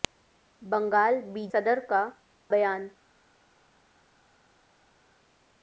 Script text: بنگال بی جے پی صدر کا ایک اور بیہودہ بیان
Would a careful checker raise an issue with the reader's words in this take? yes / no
yes